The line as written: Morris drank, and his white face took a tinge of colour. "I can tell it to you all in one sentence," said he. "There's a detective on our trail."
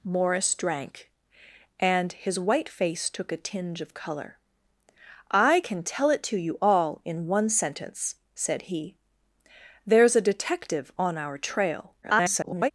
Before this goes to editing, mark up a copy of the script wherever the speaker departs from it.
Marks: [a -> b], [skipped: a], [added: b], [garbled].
Morris drank, and his white face took a tinge of colour. "I can tell it to you all in one sentence," said he. "There's a detective on our trail." [garbled]